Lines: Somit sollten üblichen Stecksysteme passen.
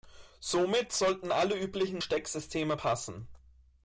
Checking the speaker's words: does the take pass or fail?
fail